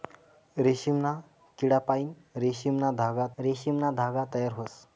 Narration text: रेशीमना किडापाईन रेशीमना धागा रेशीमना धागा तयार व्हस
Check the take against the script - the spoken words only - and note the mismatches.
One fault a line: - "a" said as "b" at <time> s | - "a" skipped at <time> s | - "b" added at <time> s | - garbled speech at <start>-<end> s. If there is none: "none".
none